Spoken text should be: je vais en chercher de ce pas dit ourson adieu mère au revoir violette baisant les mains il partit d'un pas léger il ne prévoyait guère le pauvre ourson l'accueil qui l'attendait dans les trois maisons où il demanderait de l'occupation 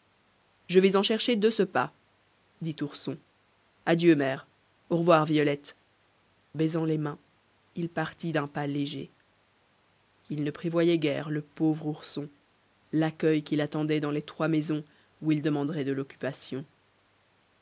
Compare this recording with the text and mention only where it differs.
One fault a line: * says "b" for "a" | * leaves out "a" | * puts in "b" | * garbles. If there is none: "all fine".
all fine